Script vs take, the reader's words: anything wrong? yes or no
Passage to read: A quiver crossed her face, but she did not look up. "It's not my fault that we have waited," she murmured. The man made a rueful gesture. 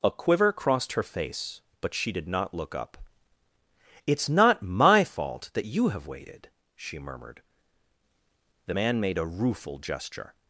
yes